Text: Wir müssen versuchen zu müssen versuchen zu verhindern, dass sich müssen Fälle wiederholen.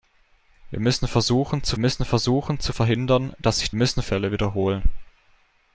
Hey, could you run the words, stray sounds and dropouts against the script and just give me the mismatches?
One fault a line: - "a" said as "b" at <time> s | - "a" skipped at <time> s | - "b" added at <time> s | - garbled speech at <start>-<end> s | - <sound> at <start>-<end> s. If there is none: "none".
none